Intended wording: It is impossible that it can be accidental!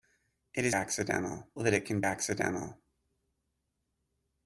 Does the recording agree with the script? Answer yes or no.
no